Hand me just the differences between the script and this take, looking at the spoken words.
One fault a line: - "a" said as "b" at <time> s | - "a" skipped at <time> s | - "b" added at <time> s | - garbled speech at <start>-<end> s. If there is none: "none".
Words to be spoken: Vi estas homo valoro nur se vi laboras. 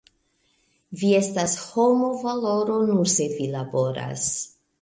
none